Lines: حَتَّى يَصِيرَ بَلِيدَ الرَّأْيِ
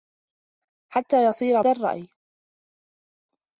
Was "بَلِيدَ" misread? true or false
true